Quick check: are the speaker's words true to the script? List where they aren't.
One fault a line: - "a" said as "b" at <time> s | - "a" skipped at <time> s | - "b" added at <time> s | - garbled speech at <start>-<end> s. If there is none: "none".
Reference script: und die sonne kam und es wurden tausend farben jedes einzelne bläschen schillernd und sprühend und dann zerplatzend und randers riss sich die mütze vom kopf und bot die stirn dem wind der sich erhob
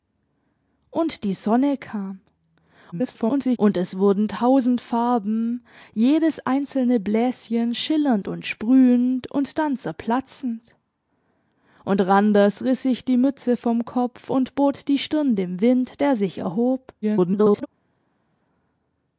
- garbled speech at 2.9-3.6 s
- garbled speech at 17.0-17.7 s